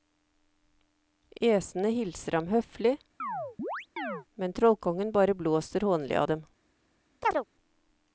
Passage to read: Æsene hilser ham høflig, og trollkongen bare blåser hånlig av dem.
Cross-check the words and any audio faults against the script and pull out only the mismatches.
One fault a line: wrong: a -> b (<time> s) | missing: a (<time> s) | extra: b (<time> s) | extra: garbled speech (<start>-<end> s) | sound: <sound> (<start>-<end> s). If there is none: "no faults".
sound: chirp (3.2-4.3 s)
wrong: og -> men (4.4 s)
sound: chirp (7.2-7.4 s)